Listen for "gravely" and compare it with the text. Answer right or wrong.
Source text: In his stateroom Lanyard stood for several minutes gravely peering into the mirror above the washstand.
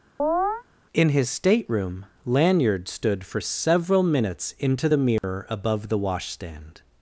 wrong